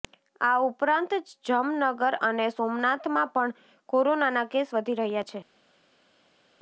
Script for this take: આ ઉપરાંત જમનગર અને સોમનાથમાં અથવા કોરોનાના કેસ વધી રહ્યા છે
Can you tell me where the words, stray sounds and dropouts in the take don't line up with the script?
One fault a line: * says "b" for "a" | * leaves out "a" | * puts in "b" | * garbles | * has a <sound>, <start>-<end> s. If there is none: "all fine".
* says "પણ" for "અથવા"